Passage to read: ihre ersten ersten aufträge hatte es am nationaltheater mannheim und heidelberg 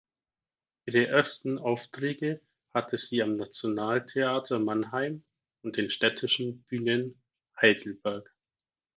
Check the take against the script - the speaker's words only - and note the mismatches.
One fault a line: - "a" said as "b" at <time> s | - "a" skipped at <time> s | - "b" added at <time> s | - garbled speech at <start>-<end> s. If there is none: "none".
- "ersten" skipped at 1.6 s
- "es" said as "sie" at 3.0 s
- "den städtischen bühnen" added at 5.8 s